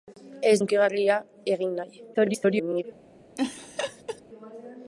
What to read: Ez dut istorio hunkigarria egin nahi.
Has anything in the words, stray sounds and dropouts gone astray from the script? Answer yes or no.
yes